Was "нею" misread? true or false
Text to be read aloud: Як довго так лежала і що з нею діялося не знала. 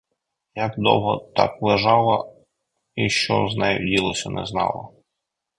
false